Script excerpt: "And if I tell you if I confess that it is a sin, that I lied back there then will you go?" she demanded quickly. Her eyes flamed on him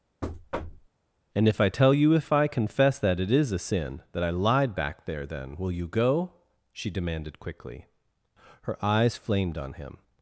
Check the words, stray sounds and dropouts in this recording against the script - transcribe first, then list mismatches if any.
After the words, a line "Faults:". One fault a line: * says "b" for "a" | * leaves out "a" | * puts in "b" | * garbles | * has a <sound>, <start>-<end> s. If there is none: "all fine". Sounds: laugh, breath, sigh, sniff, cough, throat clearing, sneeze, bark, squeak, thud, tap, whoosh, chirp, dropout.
"And if I tell you if I confess that it is a sin, that I lied back there then will you go?" she demanded quickly. Her eyes flamed on him
Faults:
* has a thud, 0.2-0.9 s